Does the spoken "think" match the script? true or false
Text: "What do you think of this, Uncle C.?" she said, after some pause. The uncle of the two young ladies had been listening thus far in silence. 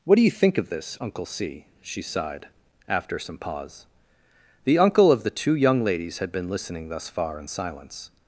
true